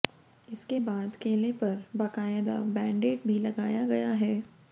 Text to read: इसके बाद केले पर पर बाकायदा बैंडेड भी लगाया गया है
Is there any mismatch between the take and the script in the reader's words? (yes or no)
yes